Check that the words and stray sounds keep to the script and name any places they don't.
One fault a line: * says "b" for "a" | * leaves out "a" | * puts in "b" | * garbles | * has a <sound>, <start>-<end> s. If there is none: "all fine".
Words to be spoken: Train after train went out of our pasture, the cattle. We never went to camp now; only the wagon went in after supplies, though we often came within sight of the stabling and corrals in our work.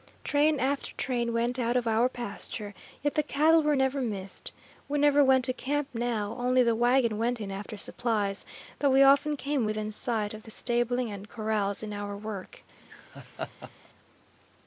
* puts in "yet"
* puts in "were never missed"
* has a laugh, 12.8-13.9 s